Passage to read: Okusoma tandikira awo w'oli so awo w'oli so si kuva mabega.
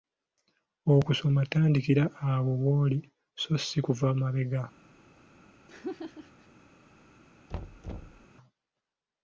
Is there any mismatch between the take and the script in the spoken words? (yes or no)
yes